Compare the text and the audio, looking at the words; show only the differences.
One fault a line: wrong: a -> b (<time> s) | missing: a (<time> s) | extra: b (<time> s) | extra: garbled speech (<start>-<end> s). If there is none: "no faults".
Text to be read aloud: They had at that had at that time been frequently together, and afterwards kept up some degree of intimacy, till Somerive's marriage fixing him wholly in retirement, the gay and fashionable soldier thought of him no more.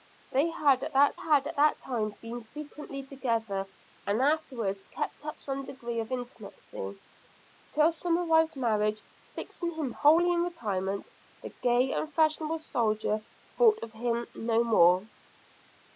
no faults